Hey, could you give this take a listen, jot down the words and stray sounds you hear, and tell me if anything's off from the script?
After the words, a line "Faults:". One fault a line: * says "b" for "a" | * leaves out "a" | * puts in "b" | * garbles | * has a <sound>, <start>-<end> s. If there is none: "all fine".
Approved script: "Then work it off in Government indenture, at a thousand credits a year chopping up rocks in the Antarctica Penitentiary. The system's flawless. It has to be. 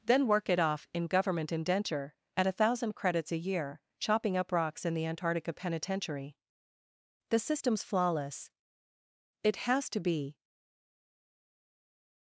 "Then work it off in Government indenture, at a thousand credits a year chopping up rocks in the Antarctica Penitentiary. The system's flawless. It has to be.
Faults:
all fine